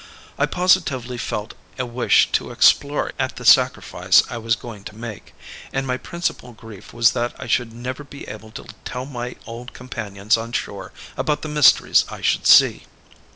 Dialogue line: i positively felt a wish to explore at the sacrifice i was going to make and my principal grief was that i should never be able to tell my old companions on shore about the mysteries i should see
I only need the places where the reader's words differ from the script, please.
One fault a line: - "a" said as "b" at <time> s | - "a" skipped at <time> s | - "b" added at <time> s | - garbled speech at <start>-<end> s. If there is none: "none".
none